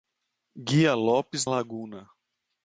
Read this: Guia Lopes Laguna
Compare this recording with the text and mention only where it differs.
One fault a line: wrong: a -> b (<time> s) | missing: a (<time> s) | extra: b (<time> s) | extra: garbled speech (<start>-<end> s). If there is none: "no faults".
no faults